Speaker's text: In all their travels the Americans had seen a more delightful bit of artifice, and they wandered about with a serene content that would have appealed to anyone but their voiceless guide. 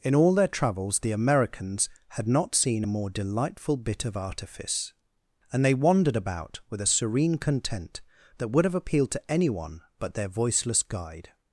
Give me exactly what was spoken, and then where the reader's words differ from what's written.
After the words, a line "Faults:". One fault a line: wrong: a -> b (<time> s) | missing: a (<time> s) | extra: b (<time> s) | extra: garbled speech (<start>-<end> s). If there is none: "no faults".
In all their travels the Americans had not seen a more delightful bit of artifice, and they wandered about with a serene content that would have appealed to anyone but their voiceless guide.
Faults:
extra: not (2.3 s)